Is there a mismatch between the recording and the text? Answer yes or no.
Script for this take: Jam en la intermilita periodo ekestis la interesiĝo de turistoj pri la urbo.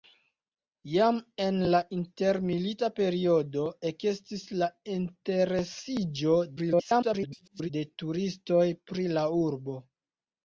yes